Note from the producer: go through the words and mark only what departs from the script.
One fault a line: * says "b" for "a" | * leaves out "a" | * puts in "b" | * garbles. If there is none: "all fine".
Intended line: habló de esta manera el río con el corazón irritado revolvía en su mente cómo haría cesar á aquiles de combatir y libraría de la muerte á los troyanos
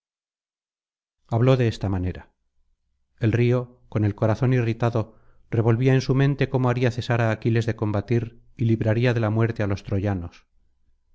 all fine